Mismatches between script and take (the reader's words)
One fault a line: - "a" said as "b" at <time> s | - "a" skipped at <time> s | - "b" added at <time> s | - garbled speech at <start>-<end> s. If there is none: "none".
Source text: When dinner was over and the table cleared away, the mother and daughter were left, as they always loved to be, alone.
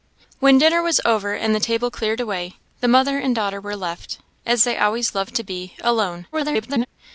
- garbled speech at 6.3-6.9 s